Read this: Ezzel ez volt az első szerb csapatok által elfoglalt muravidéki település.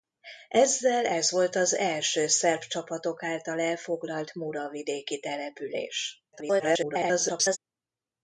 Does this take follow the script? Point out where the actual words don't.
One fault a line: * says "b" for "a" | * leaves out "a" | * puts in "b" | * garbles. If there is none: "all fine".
* garbles